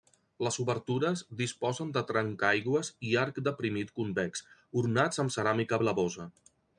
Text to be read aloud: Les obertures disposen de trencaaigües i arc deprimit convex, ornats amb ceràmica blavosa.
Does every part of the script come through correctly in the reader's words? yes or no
yes